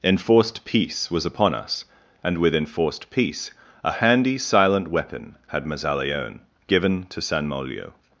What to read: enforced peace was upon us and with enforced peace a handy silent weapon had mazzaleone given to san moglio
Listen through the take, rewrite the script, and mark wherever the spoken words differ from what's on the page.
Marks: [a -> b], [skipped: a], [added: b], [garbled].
enforced peace was upon us and with enforced peace a handy silent weapon had mazzaleone given to san moglio